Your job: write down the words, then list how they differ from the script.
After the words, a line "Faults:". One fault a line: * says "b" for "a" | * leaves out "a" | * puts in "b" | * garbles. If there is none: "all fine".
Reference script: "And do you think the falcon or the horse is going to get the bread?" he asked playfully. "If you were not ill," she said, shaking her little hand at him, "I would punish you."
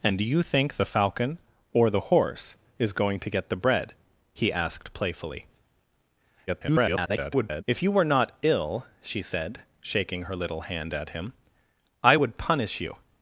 "And do you think the falcon or the horse is going to get the bread?" he asked playfully. [garbled] "If you were not ill," she said, shaking her little hand at him, "I would punish you."
Faults:
* garbles